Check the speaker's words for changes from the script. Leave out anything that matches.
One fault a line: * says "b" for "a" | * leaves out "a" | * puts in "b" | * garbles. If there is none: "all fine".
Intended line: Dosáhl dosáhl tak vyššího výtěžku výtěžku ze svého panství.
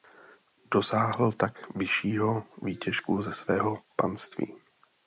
* leaves out "dosáhl"
* leaves out "výtěžku"